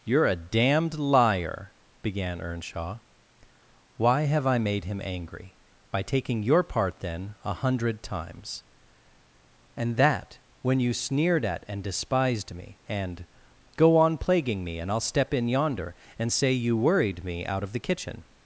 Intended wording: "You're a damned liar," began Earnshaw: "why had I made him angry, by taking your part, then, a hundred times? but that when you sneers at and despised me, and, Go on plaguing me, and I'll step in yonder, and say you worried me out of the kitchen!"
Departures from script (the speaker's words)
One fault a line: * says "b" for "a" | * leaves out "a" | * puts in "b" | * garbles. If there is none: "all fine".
* says "have" for "had"
* says "and" for "but"
* says "sneered" for "sneers"